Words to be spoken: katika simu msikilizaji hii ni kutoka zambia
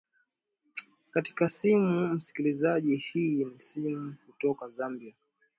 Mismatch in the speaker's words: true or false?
true